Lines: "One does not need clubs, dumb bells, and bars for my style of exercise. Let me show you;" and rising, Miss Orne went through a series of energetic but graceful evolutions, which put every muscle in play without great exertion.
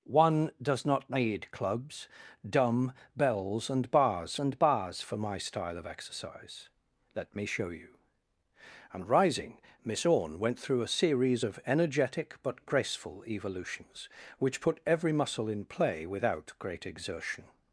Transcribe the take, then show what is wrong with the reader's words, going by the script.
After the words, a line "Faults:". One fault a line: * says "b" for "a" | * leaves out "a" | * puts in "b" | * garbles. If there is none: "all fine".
"One does not need clubs, dumb bells, and bars and bars for my style of exercise. Let me show you;" and rising, Miss Orne went through a series of energetic but graceful evolutions, which put every muscle in play without great exertion.
Faults:
* puts in "and bars"